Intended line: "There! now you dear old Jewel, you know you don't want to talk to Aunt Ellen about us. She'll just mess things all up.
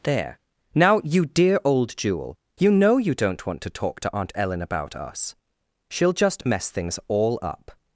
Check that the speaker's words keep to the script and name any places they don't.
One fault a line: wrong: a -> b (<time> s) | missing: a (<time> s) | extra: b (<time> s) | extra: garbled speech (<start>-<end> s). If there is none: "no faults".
no faults